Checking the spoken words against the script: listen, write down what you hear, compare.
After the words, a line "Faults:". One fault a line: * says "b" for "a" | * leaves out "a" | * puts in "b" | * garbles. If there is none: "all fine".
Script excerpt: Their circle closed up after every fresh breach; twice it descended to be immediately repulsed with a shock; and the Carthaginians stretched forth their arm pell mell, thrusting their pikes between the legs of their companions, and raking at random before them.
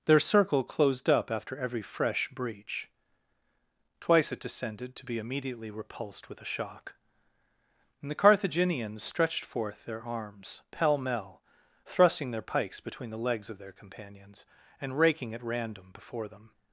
Their circle closed up after every fresh breach; twice it descended to be immediately repulsed with a shock; and the Carthaginians stretched forth their arms pell mell, thrusting their pikes between the legs of their companions, and raking at random before them.
Faults:
* says "arms" for "arm"